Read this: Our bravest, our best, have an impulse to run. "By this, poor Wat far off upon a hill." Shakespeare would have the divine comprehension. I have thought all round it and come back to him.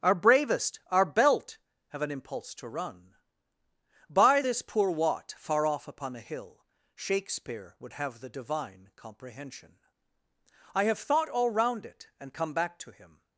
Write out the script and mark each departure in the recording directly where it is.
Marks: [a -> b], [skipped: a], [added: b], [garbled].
Our bravest, our [best, -> belt] have an impulse to run. "By this, poor Wat far off upon a hill." Shakespeare would have the divine comprehension. I have thought all round it and come back to him.